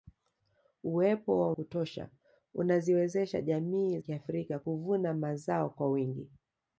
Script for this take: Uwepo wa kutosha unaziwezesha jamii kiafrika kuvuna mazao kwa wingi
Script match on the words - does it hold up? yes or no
yes